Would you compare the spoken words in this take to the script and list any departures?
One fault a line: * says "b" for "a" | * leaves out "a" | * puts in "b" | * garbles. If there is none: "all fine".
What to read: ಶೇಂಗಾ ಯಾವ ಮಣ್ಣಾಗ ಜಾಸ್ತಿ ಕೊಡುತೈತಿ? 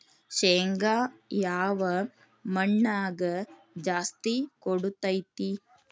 all fine